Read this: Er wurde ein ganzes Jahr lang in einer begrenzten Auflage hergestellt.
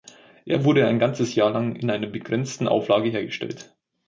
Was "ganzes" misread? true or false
false